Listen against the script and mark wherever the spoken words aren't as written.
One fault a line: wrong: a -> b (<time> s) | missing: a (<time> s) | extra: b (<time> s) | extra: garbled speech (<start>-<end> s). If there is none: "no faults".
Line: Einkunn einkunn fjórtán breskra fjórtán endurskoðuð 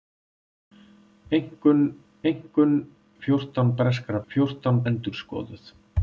no faults